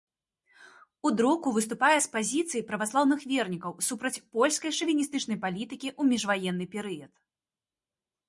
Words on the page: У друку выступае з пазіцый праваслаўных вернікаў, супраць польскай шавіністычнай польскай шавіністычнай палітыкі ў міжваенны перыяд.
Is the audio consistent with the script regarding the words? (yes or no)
no